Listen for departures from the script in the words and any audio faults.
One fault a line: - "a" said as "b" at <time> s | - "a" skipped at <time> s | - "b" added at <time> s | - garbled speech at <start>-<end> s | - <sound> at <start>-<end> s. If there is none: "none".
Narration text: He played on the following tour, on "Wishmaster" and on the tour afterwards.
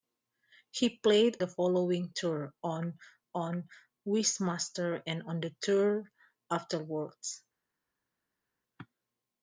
- "on" skipped at 1.4 s
- "on" added at 3.3 s